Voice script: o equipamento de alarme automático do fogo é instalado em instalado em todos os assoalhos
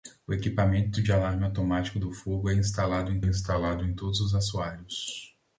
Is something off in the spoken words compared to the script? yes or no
no